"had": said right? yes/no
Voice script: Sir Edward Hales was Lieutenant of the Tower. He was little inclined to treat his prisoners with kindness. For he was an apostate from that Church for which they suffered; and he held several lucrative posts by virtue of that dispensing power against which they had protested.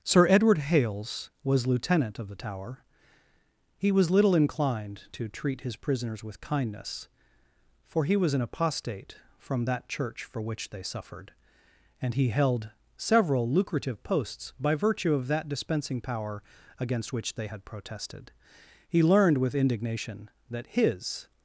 yes